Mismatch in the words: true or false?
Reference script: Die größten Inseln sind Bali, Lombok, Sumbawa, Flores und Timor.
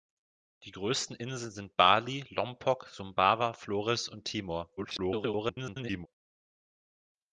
true